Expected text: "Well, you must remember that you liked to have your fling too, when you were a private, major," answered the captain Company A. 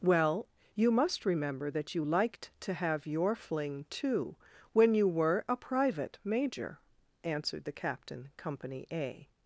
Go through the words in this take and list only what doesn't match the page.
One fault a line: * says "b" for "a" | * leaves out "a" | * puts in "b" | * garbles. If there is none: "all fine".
all fine